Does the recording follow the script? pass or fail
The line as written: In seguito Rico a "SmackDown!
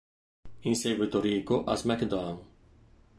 pass